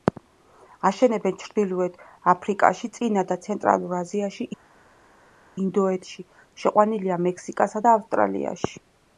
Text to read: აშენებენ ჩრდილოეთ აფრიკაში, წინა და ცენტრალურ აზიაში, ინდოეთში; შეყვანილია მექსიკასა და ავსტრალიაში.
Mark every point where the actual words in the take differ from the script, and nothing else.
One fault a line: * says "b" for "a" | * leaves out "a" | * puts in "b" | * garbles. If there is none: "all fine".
all fine